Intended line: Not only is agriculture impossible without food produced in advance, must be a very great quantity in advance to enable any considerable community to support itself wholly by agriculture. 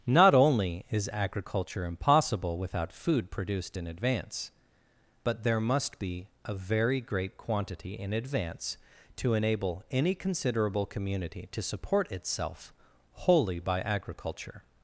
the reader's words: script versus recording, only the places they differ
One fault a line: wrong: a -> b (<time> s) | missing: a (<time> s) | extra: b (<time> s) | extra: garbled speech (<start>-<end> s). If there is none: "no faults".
extra: but there (5.2 s)